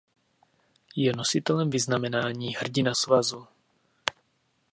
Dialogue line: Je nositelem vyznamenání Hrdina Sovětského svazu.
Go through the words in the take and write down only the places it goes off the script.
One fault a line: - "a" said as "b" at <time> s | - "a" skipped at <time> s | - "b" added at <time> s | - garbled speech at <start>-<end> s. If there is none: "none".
- "Sovětského" skipped at 2.9 s